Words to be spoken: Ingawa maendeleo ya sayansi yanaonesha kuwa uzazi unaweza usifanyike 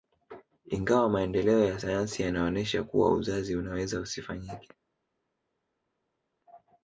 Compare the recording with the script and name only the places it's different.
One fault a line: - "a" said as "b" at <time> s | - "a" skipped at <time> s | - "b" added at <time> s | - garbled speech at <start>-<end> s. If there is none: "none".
none